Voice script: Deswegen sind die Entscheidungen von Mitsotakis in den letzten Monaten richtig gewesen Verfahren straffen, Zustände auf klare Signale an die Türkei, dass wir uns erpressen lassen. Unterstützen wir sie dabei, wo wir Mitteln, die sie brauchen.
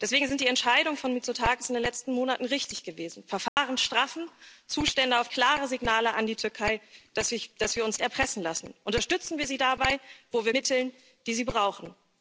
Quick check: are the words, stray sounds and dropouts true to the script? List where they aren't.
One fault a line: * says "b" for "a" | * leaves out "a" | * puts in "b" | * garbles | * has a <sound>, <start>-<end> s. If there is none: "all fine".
* has a dropout, 3.5-3.6 s